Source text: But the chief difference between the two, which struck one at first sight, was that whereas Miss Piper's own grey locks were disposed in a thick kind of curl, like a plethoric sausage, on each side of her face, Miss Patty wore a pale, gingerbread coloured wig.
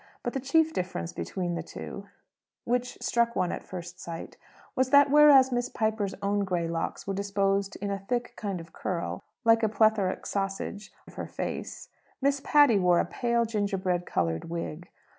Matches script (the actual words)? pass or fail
fail